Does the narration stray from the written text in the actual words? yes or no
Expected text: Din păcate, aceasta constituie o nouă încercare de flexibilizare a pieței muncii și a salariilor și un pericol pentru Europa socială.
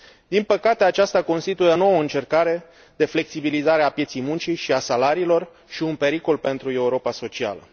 no